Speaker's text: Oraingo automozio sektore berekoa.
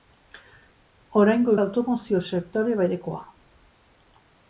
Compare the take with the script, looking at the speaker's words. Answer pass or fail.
pass